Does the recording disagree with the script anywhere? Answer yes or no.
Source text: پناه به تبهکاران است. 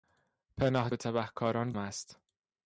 no